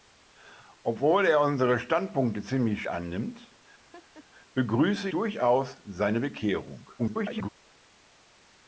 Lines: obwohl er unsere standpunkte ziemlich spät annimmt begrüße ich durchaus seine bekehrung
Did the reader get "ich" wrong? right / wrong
wrong